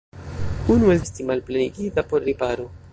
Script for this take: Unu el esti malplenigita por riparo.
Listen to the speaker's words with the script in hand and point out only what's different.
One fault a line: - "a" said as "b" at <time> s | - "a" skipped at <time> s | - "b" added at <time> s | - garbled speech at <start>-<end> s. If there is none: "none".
none